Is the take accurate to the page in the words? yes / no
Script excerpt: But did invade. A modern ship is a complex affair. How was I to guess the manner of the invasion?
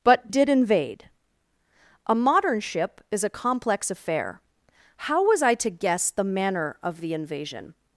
yes